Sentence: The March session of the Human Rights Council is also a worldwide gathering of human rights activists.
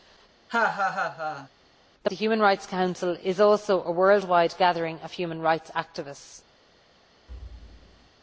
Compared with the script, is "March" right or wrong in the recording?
wrong